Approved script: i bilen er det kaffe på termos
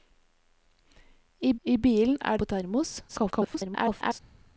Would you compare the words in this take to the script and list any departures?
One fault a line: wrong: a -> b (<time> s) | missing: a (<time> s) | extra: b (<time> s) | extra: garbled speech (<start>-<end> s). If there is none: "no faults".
extra: i (1.6 s)
missing: det kaffe (2.4 s)
extra: garbled speech (3.1-4.2 s)